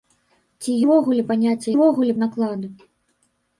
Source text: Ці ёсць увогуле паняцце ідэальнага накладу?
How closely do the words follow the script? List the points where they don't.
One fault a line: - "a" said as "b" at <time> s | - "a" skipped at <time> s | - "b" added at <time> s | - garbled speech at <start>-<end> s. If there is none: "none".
- "ёсць" skipped at 0.7 s
- "ідэальнага" said as "увогуле" at 1.7 s